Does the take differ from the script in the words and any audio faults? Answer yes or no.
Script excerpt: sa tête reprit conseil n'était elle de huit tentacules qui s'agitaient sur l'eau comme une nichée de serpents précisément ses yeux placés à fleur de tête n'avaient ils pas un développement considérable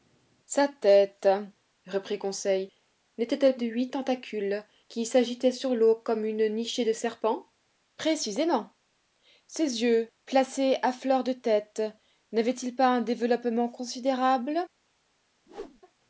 yes